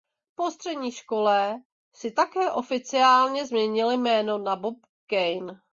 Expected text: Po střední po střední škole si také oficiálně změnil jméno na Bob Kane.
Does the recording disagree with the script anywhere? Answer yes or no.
yes